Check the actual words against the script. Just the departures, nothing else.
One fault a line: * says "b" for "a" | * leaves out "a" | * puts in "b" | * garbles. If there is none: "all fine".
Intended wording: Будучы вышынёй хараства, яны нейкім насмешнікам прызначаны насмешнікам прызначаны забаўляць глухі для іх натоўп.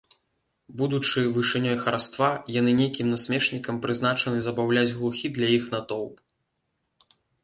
* leaves out "насмешнікам прызначаны"